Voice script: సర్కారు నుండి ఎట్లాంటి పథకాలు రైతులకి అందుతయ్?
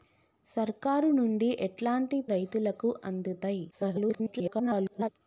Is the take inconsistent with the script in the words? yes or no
yes